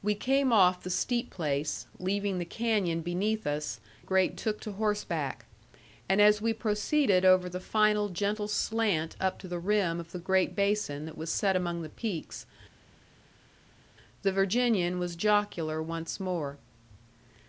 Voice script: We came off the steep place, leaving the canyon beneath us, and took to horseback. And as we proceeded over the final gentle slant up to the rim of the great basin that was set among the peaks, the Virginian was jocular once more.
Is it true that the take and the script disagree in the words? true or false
true